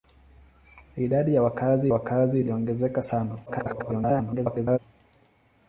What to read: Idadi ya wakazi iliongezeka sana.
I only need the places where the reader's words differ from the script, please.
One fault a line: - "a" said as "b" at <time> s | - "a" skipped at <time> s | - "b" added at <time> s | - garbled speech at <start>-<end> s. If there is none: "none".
- "wakazi" added at 1.9 s
- garbled speech at 3.5-4.8 s